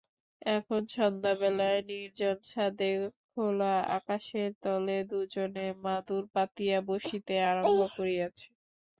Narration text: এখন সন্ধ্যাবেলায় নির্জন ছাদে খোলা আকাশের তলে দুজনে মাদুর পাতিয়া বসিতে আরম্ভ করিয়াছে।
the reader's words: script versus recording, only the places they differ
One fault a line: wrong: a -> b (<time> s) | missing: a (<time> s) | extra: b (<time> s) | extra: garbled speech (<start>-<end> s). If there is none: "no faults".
no faults